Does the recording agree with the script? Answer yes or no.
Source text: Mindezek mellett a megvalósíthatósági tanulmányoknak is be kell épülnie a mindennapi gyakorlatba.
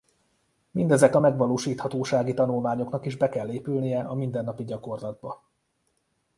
no